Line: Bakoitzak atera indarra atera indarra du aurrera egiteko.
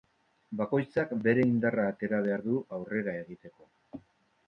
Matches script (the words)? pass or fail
fail